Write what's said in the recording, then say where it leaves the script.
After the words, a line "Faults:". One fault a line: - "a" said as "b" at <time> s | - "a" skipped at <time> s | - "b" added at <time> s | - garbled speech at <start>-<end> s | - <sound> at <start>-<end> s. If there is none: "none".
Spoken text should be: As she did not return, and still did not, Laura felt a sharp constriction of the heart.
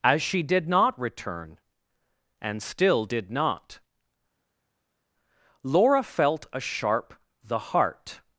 As she did not return, and still did not, Laura felt a sharp the heart.
Faults:
- "constriction of" skipped at 7.1 s